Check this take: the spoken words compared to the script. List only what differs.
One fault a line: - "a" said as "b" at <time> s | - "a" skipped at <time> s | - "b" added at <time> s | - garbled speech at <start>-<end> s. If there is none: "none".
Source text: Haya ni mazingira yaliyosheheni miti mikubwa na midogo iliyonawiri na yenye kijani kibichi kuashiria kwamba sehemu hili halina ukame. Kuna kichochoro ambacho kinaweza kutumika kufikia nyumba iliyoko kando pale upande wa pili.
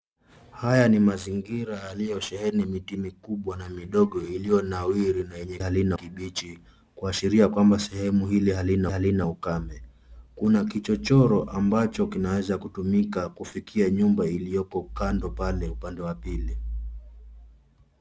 - "kijani" said as "halina" at 5.6 s
- "halina" added at 8.9 s